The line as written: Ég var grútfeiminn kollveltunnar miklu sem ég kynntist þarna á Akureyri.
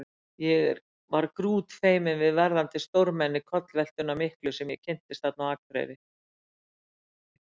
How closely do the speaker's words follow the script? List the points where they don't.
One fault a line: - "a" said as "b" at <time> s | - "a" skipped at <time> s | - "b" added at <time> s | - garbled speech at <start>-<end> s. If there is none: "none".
- "við verðandi stórmenni" added at 2.2 s